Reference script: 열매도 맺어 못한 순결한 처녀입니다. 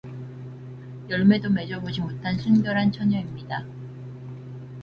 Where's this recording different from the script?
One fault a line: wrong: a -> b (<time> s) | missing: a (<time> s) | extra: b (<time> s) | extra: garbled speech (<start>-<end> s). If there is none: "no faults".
extra: 보지 (1.8 s)